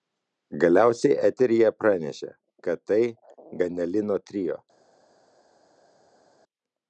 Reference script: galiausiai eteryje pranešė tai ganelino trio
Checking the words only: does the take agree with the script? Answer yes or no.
no